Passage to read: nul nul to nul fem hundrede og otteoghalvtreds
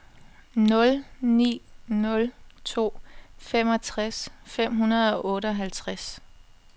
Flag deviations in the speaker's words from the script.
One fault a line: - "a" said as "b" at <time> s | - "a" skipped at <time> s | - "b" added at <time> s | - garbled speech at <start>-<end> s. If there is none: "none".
- "ni" added at 1.2 s
- "nul" said as "femogtres" at 3.4 s